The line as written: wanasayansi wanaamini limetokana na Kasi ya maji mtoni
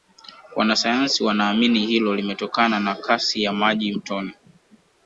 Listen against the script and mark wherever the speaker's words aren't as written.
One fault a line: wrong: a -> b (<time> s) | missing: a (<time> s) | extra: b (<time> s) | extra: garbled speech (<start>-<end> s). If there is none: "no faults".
extra: hilo (1.9 s)